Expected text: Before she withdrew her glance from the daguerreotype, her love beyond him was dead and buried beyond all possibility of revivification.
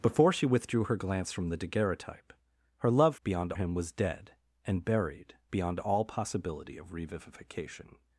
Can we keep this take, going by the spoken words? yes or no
yes